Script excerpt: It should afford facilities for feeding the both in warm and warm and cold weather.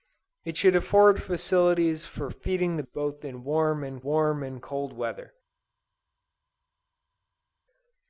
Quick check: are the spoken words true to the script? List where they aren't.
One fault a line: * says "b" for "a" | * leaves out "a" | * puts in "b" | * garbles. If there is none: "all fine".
all fine